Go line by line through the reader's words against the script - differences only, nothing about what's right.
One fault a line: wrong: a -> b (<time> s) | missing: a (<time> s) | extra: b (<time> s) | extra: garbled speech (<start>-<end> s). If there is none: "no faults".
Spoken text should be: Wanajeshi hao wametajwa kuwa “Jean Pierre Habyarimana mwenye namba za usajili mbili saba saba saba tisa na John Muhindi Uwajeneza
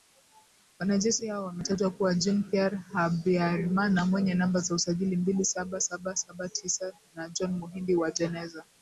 no faults